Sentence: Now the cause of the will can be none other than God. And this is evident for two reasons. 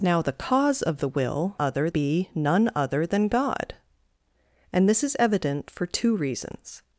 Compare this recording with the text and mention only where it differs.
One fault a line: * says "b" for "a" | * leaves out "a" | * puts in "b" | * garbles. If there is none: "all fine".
* says "other" for "can"